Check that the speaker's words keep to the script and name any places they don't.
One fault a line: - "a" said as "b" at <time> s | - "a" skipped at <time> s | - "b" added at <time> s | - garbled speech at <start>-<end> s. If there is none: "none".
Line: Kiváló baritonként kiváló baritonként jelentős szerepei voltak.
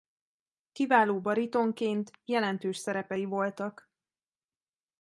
- "kiváló baritonként" skipped at 2.1 s